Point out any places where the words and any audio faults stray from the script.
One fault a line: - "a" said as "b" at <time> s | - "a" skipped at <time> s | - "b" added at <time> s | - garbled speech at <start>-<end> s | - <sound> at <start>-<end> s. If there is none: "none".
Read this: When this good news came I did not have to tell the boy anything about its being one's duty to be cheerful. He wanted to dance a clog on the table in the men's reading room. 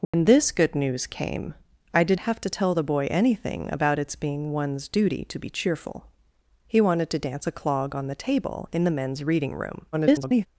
- dropout at 0.0-0.1 s
- "not" skipped at 2.2 s
- garbled speech at 9.9-10.5 s